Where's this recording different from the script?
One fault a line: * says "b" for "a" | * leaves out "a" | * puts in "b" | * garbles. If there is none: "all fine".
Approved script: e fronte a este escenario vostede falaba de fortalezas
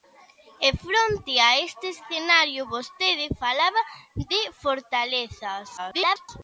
* garbles